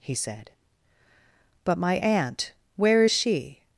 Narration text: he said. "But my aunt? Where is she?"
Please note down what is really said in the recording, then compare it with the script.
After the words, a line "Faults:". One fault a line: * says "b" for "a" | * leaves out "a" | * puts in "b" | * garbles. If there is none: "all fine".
he said. "But my aunt? Where is she?"
Faults:
all fine